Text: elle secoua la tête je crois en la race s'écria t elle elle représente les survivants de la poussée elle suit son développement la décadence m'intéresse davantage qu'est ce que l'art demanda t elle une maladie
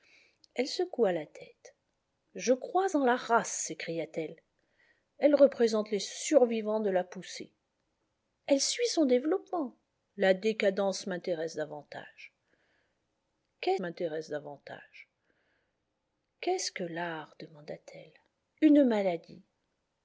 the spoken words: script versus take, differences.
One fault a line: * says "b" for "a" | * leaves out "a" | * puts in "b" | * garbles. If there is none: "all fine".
* puts in "m'intéresse davantage qu'est"